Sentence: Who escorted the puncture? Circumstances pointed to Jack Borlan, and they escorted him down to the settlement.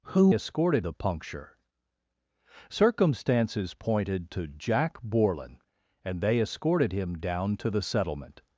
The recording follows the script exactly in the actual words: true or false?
true